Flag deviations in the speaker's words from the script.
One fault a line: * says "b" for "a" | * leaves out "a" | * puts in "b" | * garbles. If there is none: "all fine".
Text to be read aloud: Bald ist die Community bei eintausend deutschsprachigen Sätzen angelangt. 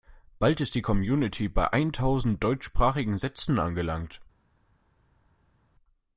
all fine